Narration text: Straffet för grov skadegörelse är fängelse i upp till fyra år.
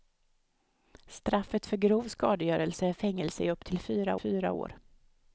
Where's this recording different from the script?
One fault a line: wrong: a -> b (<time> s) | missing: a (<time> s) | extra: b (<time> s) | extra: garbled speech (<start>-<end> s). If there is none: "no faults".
extra: fyra (4.1 s)